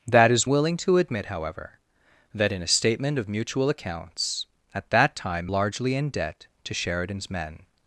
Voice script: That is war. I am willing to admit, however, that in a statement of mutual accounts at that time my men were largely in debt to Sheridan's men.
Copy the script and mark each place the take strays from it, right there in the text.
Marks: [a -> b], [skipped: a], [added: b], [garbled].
That is [skipped: war. I am] willing to admit, however, that in a statement of mutual accounts at that time [skipped: my men were] largely in debt to Sheridan's men.